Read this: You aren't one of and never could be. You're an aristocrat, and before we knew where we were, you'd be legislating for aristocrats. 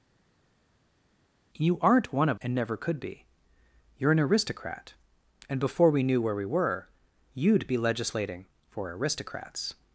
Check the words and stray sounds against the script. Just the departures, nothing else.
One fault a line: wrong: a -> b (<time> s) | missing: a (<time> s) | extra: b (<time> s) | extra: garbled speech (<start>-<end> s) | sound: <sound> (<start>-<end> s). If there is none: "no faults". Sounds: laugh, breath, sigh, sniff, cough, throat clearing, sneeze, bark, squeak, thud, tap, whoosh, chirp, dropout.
no faults